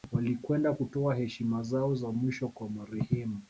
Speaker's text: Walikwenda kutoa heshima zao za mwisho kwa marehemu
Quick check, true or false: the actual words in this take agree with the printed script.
true